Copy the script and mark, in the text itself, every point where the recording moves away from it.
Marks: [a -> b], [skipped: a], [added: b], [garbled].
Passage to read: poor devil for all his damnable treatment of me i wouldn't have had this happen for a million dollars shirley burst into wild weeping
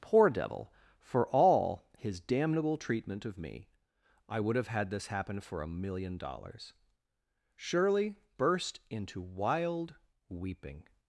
poor devil for all his damnable treatment of me i [wouldn't -> would] have had this happen for a million dollars shirley burst into wild weeping